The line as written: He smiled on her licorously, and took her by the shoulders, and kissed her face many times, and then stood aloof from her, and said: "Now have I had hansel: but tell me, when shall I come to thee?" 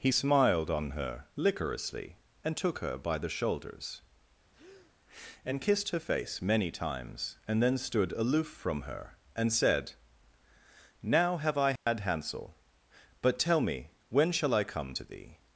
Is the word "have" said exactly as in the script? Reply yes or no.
yes